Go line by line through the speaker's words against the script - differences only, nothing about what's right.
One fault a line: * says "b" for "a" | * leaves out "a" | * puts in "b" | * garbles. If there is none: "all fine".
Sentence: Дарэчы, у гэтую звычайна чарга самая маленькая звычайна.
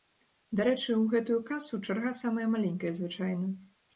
* says "касу" for "звычайна"